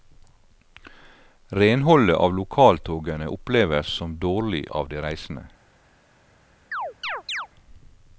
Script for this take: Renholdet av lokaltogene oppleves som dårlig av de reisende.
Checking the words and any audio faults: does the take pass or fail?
fail